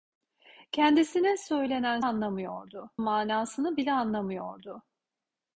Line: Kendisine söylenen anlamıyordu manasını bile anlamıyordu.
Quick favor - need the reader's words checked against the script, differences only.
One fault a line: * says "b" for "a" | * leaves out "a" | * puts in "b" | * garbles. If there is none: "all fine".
all fine